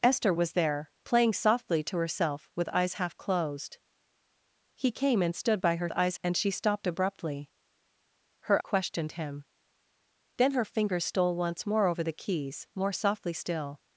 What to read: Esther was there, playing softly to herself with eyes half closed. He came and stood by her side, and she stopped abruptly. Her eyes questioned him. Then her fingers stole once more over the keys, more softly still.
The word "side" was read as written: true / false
false